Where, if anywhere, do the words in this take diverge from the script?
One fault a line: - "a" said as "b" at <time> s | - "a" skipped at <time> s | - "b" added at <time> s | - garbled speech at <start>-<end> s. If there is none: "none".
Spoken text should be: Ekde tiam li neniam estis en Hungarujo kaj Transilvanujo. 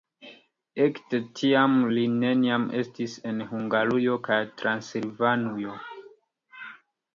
none